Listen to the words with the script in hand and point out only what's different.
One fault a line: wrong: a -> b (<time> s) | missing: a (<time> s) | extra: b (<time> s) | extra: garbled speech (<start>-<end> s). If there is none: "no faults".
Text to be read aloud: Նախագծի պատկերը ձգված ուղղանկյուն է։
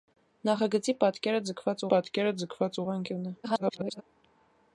extra: պատկերը ձգված (1.9 s)
extra: garbled speech (3.4-4.0 s)